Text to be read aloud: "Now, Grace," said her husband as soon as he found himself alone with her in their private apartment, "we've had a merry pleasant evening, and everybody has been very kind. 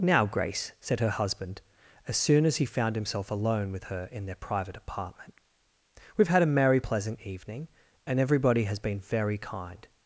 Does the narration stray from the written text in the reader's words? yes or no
no